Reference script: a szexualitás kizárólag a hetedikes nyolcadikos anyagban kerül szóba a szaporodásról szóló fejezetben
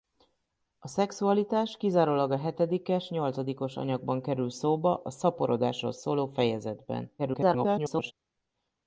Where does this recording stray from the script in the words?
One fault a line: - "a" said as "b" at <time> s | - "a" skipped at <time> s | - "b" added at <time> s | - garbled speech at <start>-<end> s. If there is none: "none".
- garbled speech at 7.2-8.1 s